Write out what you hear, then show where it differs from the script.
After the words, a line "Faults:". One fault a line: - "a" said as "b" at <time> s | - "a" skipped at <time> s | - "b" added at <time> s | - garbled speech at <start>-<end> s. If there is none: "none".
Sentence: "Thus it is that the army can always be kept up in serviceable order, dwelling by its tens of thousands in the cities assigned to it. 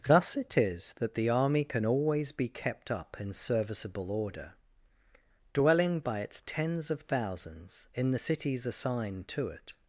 "Thus it is that the army can always be kept up in serviceable order, dwelling by its tens of thousands in the cities assigned to it.
Faults:
none